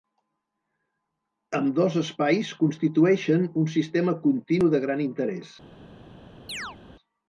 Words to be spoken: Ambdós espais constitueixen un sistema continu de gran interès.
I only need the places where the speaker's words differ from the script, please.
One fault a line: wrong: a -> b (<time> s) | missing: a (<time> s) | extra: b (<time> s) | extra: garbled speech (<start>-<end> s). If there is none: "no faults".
no faults